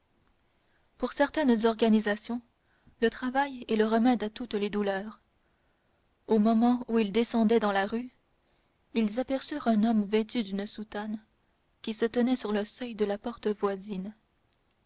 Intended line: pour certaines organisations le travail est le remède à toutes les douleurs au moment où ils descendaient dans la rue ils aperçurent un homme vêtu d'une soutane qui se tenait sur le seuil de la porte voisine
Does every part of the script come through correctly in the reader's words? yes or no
yes